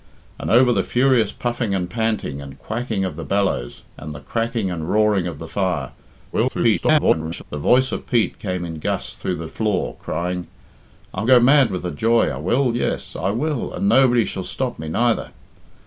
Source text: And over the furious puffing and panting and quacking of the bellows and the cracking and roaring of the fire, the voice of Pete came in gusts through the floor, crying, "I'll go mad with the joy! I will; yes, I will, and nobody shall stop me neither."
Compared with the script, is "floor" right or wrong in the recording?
right